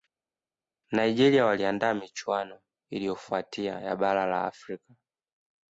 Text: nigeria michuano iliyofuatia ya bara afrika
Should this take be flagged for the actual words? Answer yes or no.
yes